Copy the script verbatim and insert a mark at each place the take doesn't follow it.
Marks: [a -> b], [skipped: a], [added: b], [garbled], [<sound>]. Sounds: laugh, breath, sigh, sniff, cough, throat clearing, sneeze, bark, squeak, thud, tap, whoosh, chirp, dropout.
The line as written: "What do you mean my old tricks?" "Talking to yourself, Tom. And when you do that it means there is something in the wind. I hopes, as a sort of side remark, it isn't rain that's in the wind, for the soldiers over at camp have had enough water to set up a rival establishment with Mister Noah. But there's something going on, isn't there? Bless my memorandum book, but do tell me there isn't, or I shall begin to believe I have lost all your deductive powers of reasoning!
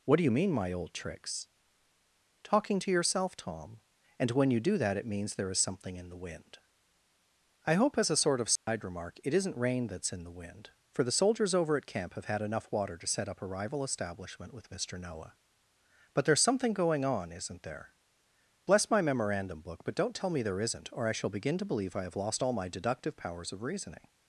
"What do you mean my old tricks?" "Talking to yourself, Tom. And when you do that it means there is something in the wind. I [hopes, -> hope] as a sort of side [dropout] remark, it isn't rain that's in the wind, for the soldiers over at camp have had enough water to set up a rival establishment with Mister Noah. But there's something going on, isn't there? Bless my memorandum book, but [do -> don't] tell me there isn't, or I shall begin to believe I have lost all [your -> my] deductive powers of reasoning!